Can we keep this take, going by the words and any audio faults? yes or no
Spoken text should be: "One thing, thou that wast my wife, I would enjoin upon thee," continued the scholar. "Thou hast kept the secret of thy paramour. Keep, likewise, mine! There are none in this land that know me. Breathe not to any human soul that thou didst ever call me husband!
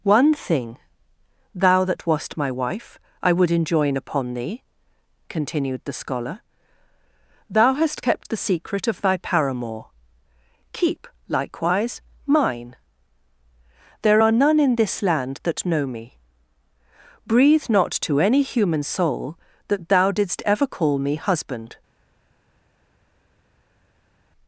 yes